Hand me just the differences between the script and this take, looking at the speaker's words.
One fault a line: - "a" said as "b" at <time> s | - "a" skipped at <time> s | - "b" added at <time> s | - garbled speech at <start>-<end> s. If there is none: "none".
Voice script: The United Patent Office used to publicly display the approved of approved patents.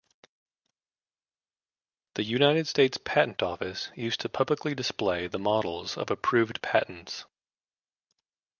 - "States" added at 2.7 s
- "approved" said as "models" at 5.4 s